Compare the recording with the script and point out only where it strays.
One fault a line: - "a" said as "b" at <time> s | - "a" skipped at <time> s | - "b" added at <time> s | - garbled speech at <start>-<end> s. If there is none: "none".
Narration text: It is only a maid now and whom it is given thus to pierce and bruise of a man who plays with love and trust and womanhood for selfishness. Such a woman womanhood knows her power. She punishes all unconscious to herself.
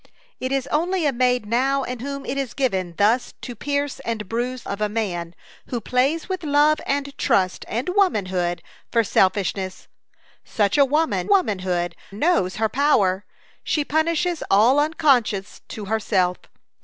none